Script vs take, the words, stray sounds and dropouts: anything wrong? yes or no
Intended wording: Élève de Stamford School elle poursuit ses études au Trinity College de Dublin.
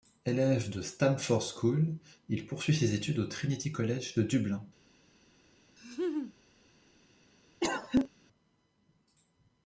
yes